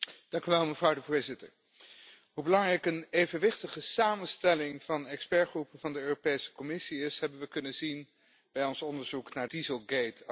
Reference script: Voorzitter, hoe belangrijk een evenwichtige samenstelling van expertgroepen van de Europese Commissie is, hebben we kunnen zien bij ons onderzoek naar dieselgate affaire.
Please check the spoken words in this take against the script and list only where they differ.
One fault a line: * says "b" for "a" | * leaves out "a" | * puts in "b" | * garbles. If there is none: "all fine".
all fine